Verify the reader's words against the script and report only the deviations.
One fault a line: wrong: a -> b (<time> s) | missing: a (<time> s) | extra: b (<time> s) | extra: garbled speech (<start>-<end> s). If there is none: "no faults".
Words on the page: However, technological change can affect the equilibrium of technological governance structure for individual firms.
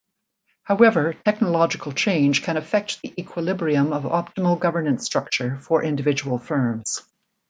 wrong: technological -> optimal (4.0 s)